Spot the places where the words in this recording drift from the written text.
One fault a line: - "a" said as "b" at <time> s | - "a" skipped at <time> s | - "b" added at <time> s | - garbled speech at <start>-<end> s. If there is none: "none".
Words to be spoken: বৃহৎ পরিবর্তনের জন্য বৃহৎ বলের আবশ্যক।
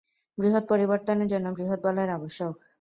none